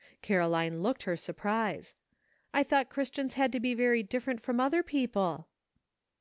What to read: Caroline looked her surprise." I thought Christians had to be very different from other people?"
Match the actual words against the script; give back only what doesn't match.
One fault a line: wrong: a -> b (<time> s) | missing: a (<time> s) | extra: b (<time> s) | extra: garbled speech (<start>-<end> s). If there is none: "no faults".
no faults